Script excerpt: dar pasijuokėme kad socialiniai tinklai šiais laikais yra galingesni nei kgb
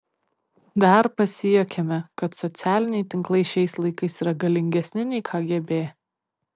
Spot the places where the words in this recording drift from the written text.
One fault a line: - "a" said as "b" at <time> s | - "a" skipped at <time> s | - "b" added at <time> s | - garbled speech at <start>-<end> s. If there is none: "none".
none